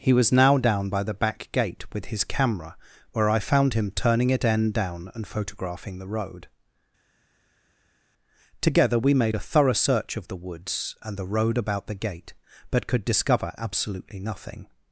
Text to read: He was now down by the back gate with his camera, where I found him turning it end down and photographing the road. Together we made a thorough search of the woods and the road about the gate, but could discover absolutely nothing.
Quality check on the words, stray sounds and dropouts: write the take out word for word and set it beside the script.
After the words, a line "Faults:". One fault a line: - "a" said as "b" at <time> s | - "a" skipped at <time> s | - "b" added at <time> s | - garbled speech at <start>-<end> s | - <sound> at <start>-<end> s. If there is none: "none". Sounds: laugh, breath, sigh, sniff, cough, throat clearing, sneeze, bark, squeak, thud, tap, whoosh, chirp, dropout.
He was now down by the back gate with his camera, where I found him turning it end down and photographing the road. Together we made a thorough search of the woods and the road about the gate, but could discover absolutely nothing.
Faults:
none